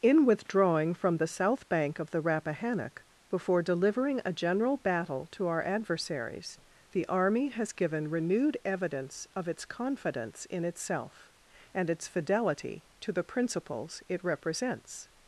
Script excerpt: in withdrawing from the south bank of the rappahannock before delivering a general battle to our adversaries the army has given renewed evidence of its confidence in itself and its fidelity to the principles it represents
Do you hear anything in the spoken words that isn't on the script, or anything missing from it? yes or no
no